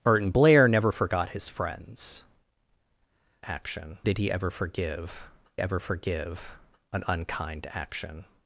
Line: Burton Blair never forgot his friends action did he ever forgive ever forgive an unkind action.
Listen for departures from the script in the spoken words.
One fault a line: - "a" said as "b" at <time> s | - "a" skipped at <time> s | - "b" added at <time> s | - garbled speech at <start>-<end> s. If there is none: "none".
none